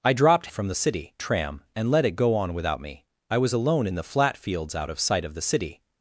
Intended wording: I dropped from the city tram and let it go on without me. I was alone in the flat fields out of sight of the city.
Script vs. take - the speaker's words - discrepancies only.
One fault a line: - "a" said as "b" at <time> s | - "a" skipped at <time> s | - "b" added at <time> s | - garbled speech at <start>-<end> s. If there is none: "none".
none